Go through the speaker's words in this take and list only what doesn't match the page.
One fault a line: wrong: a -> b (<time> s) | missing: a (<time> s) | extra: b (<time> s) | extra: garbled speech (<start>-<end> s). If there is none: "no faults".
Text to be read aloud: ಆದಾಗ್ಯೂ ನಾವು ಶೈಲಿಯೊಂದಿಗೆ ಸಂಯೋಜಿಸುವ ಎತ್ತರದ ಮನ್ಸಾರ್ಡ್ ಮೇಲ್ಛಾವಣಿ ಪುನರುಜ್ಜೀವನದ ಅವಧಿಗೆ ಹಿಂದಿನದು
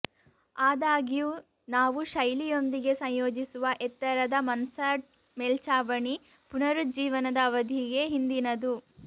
no faults